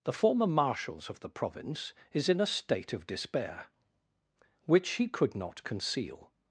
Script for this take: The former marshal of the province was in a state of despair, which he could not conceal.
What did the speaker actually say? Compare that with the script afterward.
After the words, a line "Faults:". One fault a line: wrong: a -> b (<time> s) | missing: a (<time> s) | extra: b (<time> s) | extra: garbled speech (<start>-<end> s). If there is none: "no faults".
The former marshals of the province is in a state of despair, which he could not conceal.
Faults:
wrong: marshal -> marshals (0.5 s)
wrong: was -> is (2.1 s)